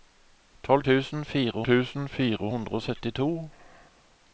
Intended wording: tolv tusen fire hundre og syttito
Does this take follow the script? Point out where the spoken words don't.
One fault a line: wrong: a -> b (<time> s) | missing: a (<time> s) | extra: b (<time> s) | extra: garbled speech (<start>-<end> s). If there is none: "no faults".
extra: tusen fire (1.7 s)